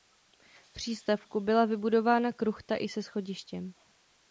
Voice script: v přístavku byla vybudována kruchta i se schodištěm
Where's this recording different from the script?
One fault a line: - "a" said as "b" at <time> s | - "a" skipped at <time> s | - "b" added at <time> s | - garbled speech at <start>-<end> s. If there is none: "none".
none